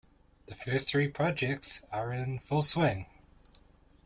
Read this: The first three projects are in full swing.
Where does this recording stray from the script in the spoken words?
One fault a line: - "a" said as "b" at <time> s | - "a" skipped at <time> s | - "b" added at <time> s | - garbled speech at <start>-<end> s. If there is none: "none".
none